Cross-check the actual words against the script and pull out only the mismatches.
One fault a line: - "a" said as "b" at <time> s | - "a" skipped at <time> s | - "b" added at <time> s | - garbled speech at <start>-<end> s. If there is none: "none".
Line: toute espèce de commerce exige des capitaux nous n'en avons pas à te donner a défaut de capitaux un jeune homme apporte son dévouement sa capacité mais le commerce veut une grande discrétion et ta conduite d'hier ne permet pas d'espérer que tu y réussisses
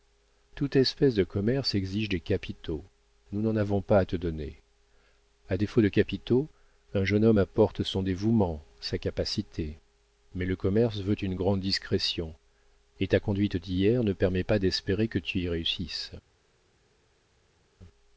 none